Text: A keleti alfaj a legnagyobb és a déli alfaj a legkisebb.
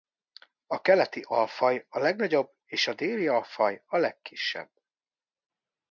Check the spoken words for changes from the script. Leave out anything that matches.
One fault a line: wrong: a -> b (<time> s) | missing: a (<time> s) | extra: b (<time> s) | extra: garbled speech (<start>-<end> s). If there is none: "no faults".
no faults